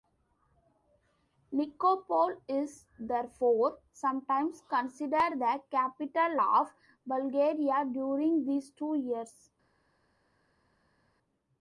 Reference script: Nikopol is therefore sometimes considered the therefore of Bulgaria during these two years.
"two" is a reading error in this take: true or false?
false